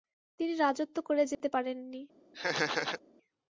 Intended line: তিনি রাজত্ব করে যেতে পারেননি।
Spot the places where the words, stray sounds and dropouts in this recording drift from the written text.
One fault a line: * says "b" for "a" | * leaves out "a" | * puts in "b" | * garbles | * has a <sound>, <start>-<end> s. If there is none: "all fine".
* has a dropout, 1.3-1.4 s
* has a laugh, 2.3-3.0 s